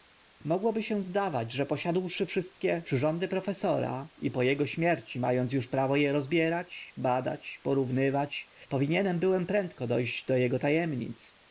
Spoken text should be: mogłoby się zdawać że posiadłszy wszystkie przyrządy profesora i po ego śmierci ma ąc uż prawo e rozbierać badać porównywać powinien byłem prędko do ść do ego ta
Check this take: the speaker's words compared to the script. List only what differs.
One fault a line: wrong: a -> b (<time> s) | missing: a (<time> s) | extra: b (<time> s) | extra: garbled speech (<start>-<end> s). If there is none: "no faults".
no faults